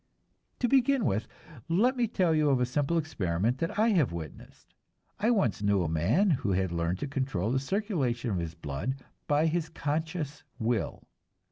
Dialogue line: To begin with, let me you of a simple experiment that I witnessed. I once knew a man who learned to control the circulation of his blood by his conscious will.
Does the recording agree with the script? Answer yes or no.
no